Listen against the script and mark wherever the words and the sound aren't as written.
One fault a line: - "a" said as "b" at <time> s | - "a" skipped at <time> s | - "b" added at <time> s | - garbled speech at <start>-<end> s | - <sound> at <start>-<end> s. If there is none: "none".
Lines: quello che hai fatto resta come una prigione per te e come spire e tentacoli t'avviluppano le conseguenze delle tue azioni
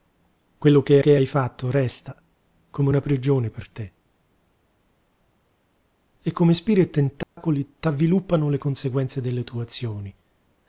- "che" added at 1.0 s
- dropout at 7.2-7.4 s